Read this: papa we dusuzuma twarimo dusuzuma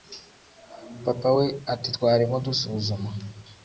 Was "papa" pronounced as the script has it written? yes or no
yes